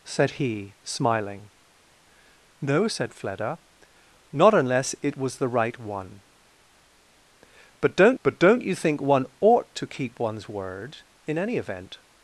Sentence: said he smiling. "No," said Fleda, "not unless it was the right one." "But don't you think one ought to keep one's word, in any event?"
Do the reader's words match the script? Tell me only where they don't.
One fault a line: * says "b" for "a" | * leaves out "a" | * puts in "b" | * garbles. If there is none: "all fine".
* puts in "but don't"